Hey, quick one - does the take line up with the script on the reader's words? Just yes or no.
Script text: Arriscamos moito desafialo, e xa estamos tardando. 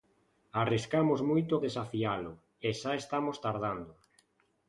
yes